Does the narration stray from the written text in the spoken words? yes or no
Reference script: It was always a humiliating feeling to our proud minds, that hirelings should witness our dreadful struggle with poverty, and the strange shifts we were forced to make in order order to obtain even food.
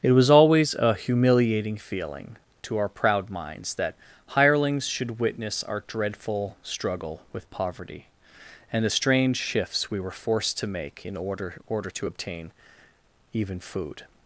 no